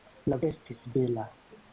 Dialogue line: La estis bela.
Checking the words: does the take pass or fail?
pass